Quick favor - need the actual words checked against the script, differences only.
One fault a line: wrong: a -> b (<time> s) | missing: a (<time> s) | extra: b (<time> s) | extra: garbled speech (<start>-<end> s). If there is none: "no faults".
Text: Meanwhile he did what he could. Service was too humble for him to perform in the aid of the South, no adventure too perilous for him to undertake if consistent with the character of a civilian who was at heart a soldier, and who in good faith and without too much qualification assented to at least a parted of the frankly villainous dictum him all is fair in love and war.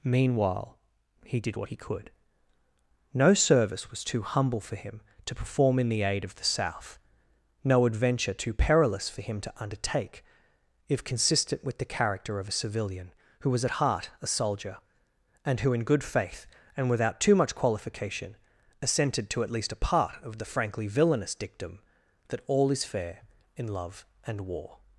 extra: No (3.1 s)
wrong: parted -> part (19.8 s)
wrong: him -> that (22.3 s)